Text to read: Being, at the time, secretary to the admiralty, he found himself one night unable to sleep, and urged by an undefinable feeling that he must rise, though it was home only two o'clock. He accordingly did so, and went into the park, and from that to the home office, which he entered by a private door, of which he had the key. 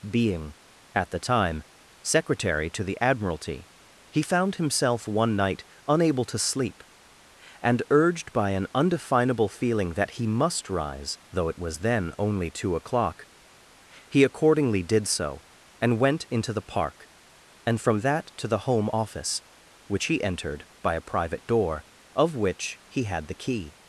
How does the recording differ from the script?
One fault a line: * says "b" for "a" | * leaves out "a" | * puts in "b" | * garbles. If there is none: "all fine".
* says "then" for "home"